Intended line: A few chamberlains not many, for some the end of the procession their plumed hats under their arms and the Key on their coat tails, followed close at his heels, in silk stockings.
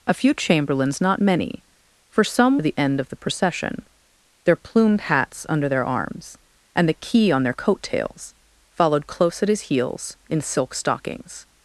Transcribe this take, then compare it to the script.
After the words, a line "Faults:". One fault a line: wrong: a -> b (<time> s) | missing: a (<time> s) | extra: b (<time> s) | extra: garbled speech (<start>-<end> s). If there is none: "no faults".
A few chamberlains not many, for some the end of the procession their plumed hats under their arms and the Key on their coat tails, followed close at his heels, in silk stockings.
Faults:
no faults